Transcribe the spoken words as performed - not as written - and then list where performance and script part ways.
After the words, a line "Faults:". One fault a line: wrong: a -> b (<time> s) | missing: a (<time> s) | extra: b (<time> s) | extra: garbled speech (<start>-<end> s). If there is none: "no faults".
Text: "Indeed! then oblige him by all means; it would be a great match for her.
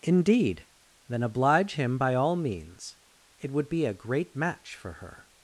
"Indeed! then oblige him by all means; it would be a great match for her.
Faults:
no faults